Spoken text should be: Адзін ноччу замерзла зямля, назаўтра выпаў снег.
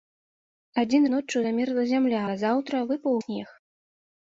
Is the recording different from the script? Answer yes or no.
no